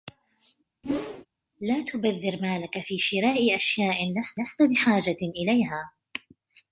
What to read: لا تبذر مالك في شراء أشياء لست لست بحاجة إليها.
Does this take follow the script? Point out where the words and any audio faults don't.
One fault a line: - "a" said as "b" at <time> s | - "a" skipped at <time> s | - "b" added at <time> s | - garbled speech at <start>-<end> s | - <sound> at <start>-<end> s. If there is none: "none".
- whoosh at 0.8-1.3 s